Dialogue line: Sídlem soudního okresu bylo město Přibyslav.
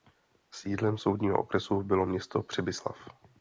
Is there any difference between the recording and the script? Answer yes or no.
no